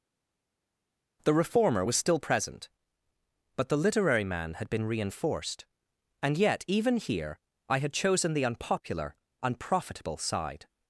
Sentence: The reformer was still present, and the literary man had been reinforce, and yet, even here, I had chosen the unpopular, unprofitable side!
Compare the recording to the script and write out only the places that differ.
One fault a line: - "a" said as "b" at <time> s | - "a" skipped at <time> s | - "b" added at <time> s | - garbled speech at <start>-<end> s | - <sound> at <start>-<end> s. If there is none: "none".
- "and" said as "but" at 3.6 s
- "reinforce" said as "reinforced" at 4.9 s